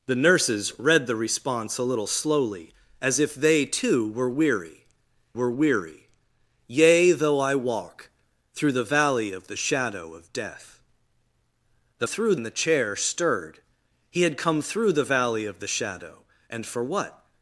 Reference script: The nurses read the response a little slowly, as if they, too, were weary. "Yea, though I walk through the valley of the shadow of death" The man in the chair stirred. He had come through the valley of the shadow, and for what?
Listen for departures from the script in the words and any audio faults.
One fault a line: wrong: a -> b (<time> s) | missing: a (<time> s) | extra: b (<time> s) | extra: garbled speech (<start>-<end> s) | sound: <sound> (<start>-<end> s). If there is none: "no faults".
extra: were weary (5.3 s)
wrong: man -> through (12.0 s)